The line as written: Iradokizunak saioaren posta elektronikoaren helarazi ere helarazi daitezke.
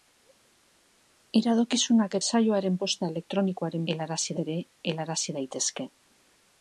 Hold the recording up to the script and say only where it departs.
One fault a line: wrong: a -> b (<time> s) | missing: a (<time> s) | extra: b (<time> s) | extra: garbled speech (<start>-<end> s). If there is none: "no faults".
no faults